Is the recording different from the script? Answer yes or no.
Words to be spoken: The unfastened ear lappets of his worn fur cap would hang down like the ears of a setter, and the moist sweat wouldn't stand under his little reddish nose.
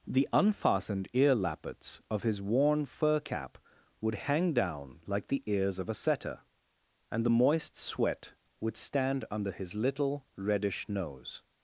yes